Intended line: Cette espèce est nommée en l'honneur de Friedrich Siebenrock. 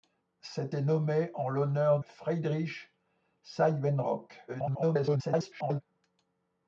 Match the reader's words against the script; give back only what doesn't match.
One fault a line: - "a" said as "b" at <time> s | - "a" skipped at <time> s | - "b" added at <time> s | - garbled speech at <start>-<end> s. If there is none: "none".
- "espèce" skipped at 0.7 s
- "de" skipped at 2.0 s
- garbled speech at 4.5-5.8 s